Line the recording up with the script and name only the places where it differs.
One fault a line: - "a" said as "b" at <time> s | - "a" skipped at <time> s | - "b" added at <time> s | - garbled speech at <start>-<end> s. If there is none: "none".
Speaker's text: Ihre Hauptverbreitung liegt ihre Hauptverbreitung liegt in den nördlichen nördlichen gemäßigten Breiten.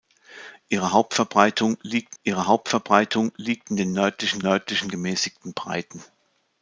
none